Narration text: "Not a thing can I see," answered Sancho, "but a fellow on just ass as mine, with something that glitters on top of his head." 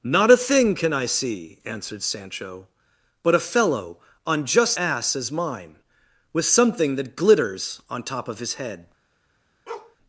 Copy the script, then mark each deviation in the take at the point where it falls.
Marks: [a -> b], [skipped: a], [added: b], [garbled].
"Not a thing can I see," answered Sancho, "but a fellow on just ass as mine, with something that glitters on top of his head."